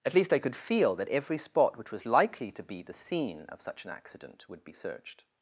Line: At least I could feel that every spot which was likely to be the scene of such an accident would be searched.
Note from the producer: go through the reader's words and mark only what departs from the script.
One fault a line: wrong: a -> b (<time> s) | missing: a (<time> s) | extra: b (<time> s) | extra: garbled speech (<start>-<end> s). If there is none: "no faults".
no faults